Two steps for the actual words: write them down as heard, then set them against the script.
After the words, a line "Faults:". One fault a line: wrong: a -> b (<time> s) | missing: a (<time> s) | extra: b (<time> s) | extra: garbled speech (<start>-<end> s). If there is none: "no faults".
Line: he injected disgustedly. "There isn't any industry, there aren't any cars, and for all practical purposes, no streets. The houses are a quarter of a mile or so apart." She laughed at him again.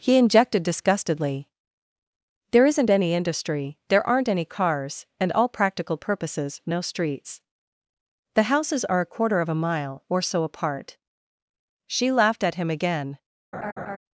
he injected disgustedly. "There isn't any industry, there aren't any cars, and all practical purposes, no streets. The houses are a quarter of a mile or so apart." She laughed at him again.
Faults:
missing: for (5.3 s)